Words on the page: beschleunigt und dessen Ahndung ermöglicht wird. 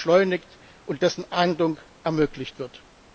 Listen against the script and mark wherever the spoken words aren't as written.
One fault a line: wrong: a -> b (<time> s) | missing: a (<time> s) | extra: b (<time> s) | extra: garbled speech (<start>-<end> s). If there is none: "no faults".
no faults